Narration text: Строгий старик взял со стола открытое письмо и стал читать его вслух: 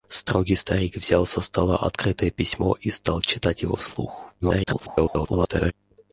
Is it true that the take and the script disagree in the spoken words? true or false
true